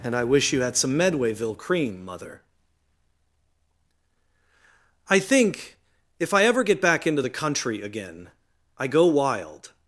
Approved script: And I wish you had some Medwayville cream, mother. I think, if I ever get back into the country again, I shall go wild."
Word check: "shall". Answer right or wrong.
wrong